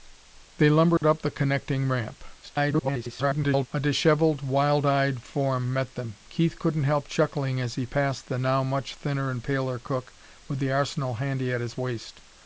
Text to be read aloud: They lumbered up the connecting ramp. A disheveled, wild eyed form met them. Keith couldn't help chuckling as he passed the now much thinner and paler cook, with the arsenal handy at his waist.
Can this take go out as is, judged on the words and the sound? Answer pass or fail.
fail